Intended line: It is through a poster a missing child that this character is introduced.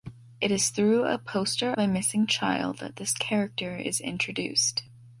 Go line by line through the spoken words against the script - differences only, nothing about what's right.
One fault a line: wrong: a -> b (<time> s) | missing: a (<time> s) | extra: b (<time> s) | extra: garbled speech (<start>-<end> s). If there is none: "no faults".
no faults